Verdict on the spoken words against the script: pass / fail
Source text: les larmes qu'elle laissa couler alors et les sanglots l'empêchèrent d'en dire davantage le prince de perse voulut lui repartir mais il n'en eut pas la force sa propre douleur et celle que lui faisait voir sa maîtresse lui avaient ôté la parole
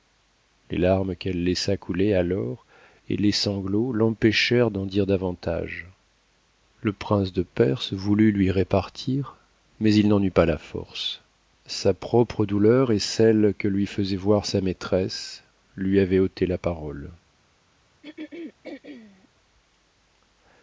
pass